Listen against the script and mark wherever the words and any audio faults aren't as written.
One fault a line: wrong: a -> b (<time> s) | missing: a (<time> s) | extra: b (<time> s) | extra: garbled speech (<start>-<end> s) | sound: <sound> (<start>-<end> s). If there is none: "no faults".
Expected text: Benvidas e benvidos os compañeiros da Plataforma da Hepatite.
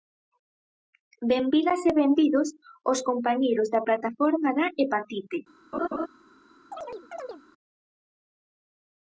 sound: laugh (5.7-6.1 s)
sound: chirp (6.7-7.4 s)